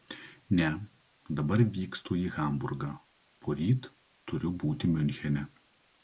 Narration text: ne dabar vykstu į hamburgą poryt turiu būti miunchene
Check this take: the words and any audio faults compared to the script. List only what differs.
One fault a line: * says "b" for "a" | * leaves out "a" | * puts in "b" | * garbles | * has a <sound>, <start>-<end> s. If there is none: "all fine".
all fine